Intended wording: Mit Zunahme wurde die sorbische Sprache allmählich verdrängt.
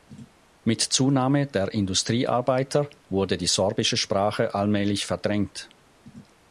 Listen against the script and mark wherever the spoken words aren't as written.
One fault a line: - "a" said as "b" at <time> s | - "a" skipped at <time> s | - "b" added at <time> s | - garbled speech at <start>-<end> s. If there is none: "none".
- "der Industriearbeiter" added at 1.4 s